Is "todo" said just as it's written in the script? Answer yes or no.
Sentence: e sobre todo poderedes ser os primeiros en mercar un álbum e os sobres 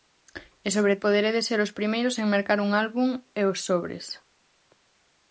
no